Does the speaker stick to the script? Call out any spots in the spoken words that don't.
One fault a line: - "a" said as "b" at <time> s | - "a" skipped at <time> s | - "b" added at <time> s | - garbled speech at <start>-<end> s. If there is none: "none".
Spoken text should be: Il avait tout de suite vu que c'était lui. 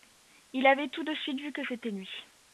none